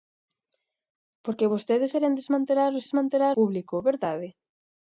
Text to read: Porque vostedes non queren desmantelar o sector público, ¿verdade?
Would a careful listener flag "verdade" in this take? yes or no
no